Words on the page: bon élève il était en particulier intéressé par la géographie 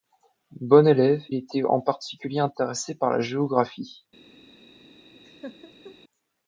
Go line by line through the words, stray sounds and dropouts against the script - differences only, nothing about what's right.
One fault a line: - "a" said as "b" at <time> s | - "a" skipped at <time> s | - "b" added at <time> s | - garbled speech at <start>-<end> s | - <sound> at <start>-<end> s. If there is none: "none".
- "il" skipped at 1.2 s
- laugh at 5.2-6.0 s